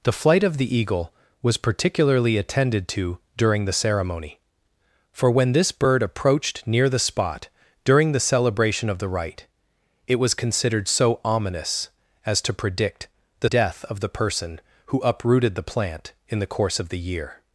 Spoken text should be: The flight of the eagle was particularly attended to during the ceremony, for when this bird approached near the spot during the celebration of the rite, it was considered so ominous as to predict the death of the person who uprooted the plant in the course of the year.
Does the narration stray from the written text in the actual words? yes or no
no